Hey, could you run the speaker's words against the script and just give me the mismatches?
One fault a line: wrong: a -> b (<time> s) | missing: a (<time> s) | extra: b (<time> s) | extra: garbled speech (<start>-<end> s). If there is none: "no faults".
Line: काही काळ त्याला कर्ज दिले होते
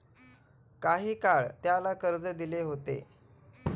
no faults